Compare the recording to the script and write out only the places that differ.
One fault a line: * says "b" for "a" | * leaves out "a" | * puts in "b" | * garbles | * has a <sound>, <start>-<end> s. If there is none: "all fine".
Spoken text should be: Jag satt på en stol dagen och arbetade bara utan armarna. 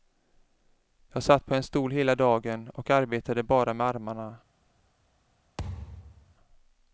* puts in "hela"
* says "med" for "utan"
* has a thud, 5.6-6.4 s